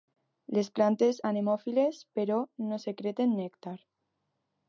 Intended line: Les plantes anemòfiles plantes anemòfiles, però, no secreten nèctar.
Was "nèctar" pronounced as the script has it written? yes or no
yes